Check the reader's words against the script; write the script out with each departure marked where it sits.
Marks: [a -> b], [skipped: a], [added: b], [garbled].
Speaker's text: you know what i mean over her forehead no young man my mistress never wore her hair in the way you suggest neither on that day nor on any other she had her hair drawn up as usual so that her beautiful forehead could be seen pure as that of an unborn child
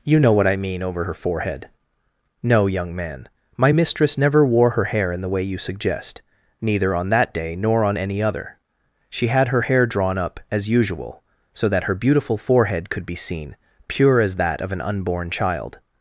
you know what i mean over her forehead no young man my mistress never wore her hair in the way you suggest neither on that day nor on any other she had her hair drawn up as usual so that her beautiful forehead could be seen pure as that of an unborn child